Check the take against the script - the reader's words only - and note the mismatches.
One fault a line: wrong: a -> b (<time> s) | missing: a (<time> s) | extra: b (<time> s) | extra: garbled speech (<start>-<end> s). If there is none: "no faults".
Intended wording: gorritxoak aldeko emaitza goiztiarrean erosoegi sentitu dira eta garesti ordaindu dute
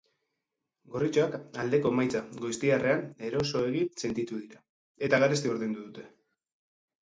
no faults